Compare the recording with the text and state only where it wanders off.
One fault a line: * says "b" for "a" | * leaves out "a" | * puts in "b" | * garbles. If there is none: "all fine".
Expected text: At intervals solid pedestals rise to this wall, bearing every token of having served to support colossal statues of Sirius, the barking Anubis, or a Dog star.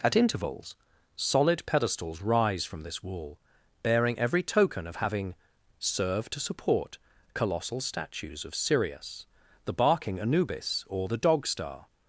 * says "from" for "to"
* says "the" for "a"